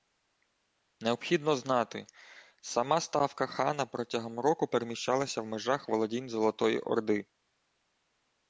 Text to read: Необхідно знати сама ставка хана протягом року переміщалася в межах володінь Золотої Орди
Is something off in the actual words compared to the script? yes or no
no